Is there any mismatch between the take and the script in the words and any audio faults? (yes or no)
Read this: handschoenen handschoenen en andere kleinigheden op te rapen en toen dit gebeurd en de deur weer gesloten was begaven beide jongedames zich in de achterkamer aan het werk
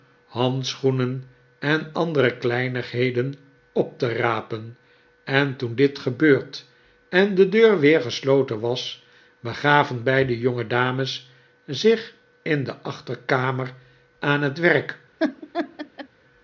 yes